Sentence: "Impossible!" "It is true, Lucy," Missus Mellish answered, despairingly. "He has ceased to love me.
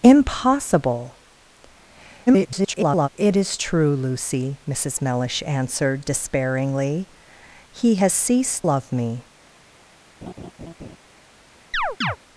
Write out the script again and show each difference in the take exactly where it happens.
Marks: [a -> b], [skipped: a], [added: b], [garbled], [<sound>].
"Impossible!" [garbled] "It is true, Lucy," Missus Mellish answered, despairingly. "He has ceased [skipped: to] love me. [laugh] [chirp]